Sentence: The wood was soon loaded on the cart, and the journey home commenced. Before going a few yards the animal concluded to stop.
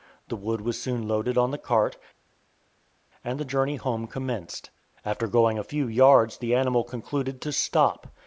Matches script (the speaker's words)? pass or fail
fail